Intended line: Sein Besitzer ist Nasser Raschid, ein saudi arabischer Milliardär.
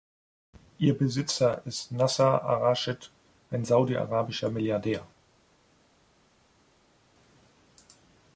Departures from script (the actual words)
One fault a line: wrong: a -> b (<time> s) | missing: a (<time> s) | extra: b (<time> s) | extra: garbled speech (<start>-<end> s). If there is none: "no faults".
wrong: Sein -> Ihr (0.8 s)
extra: ar (2.4 s)